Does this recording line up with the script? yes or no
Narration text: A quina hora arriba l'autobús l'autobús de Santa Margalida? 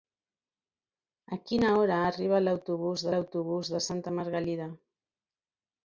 yes